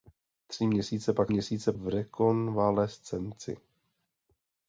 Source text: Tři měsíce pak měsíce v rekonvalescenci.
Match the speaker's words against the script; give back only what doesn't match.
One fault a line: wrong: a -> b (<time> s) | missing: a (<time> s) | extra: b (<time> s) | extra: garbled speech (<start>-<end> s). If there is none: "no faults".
no faults